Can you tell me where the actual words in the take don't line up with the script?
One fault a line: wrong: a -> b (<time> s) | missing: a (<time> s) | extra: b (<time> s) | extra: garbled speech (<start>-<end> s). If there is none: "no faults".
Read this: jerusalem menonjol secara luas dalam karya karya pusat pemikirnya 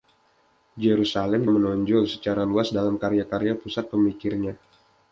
no faults